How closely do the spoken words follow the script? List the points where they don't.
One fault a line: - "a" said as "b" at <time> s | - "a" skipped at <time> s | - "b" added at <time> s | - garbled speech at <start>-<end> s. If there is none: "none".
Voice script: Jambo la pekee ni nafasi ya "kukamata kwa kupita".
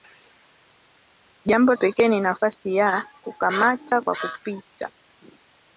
- "la" skipped at 1.8 s